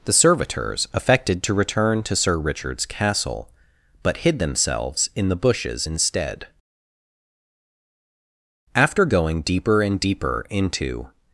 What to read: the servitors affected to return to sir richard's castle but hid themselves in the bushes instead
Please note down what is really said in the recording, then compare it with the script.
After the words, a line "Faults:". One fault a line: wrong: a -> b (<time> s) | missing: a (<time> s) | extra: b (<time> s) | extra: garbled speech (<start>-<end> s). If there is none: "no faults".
the servitors affected to return to sir richard's castle but hid themselves in the bushes instead after going deeper and deeper into
Faults:
extra: after going deeper and deeper into (8.7 s)